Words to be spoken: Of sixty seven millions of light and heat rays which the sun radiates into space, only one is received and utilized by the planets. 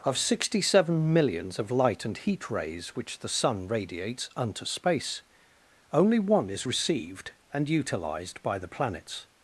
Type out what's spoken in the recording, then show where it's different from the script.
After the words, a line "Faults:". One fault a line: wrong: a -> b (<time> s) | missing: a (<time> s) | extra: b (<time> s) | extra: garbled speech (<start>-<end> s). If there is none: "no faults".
Of sixty seven millions of light and heat rays which the sun radiates unto space, only one is received and utilized by the planets.
Faults:
wrong: into -> unto (4.3 s)